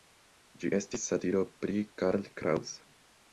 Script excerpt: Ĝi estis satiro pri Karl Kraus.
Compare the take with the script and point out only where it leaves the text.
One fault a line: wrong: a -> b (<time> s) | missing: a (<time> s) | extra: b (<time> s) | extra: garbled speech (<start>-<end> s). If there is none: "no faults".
no faults